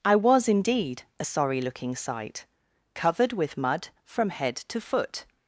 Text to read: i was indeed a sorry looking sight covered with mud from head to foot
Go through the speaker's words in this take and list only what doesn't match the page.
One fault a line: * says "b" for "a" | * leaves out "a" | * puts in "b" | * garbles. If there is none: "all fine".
all fine